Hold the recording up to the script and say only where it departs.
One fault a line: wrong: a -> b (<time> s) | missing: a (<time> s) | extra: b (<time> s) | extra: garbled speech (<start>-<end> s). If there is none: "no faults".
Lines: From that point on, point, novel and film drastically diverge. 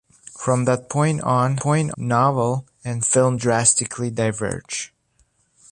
no faults